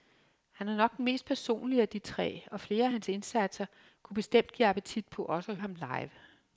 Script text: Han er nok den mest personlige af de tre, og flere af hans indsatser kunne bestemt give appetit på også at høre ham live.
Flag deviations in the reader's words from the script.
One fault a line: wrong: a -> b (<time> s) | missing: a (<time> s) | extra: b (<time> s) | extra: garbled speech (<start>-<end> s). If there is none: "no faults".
missing: høre (5.6 s)